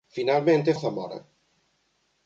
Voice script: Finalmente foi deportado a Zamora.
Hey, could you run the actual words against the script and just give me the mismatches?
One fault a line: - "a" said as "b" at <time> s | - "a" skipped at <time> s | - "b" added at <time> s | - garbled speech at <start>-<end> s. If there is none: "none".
- "foi deportado" skipped at 0.7 s